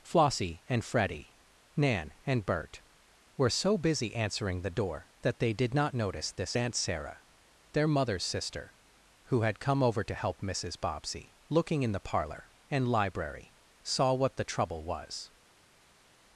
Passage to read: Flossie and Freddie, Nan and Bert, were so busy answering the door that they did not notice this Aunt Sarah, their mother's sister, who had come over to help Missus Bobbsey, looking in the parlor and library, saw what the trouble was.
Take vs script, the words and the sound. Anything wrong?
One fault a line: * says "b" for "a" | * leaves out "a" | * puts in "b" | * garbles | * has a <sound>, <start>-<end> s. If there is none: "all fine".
all fine